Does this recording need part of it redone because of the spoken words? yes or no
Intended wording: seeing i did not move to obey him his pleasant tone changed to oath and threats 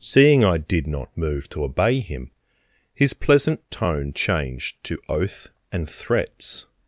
no